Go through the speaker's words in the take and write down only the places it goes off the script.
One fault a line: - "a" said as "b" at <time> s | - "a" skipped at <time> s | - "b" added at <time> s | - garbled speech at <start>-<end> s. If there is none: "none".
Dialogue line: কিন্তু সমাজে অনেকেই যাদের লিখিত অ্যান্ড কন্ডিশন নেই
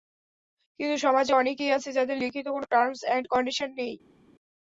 - "আছে" added at 1.8 s
- "কোনো টার্মস" added at 2.5 s